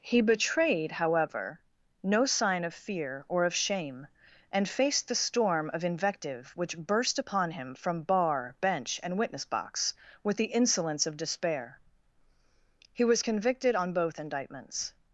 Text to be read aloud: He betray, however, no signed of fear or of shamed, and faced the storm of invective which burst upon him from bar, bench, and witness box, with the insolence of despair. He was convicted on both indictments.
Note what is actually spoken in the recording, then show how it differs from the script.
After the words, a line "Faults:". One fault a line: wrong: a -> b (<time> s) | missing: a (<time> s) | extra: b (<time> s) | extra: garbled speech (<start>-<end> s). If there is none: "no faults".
He betrayed, however, no sign of fear or of shame, and faced the storm of invective which burst upon him from bar, bench, and witness box, with the insolence of despair. He was convicted on both indictments.
Faults:
wrong: betray -> betrayed (0.2 s)
wrong: signed -> sign (2.2 s)
wrong: shamed -> shame (3.5 s)